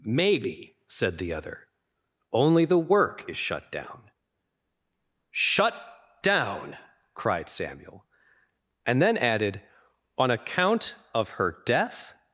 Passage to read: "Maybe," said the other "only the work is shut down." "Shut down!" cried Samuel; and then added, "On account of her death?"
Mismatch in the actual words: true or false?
false